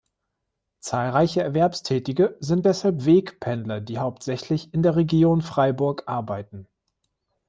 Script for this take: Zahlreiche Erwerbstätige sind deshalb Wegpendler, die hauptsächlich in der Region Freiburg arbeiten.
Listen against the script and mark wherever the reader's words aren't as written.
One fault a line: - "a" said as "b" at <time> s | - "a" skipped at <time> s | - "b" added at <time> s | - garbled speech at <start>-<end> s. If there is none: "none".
none